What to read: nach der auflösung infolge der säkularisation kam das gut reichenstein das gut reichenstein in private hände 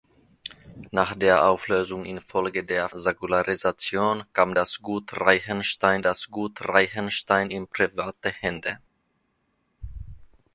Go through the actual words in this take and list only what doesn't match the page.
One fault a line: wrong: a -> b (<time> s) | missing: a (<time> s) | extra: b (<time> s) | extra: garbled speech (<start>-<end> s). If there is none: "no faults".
no faults